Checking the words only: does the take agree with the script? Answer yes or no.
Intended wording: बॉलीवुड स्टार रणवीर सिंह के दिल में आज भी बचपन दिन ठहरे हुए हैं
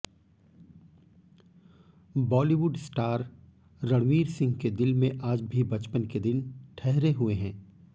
no